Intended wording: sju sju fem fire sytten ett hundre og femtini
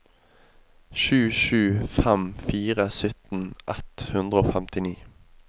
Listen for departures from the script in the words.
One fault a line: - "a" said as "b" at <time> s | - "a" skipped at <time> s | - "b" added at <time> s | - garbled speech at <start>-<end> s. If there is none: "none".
none